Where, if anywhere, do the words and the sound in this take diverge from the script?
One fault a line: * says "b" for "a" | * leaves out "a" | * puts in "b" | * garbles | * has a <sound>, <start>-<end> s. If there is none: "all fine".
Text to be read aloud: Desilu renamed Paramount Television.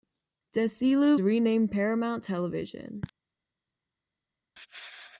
all fine